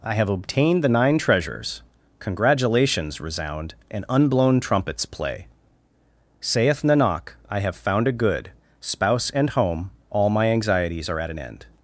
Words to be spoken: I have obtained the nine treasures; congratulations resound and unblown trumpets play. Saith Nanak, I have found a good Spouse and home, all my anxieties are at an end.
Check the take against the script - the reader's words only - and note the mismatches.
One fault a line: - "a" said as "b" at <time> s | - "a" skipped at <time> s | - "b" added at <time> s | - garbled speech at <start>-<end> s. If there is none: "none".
none